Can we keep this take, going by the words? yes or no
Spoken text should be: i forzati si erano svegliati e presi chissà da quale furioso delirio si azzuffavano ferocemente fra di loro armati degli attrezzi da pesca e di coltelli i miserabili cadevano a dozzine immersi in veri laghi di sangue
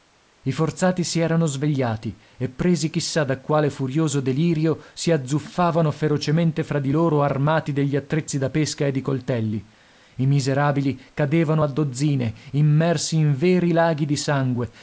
yes